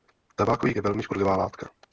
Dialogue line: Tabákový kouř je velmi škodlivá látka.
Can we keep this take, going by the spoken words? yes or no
no